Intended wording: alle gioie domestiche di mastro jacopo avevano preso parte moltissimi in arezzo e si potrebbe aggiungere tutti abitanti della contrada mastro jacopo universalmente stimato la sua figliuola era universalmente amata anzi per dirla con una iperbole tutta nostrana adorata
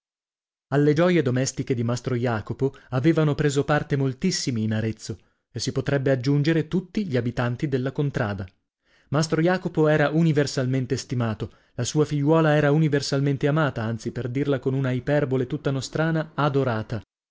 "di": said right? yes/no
yes